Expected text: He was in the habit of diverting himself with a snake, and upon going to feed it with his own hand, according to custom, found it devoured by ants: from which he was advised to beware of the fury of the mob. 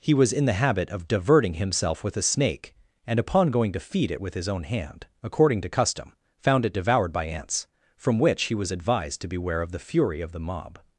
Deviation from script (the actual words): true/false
false